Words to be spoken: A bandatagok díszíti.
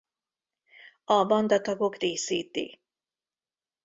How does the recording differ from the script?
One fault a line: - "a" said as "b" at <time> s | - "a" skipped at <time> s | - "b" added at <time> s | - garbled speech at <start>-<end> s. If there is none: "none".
none